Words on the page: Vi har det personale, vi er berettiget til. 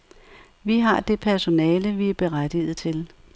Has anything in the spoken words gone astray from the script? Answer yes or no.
no